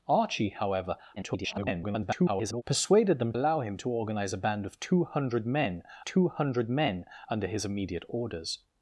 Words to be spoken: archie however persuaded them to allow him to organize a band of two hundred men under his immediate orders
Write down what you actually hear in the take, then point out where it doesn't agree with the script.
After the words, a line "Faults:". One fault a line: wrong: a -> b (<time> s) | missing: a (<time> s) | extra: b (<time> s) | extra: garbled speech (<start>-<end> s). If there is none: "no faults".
archie however [garbled] persuaded them allow him to organize a band of two hundred men two hundred men under his immediate orders
Faults:
extra: garbled speech (1.2-2.6 s)
missing: to (3.3 s)
extra: two hundred men (6.0 s)